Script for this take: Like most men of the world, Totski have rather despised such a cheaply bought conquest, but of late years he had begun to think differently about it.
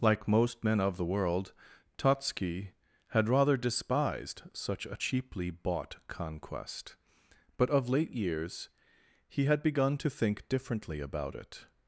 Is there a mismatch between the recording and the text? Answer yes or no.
yes